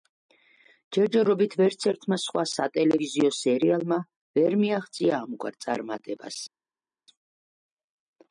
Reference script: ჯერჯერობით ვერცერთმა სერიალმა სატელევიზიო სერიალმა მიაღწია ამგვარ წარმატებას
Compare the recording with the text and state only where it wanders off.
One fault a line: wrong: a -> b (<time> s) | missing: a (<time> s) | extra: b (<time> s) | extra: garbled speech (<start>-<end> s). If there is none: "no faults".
wrong: სერიალმა -> სხვა (2.2 s)
extra: ვერ (4.4 s)